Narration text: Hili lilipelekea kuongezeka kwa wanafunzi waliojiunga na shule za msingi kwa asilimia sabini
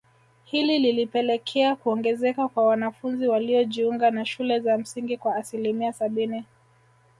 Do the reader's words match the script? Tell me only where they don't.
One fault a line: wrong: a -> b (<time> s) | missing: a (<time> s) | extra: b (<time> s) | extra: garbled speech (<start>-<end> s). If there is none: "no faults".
no faults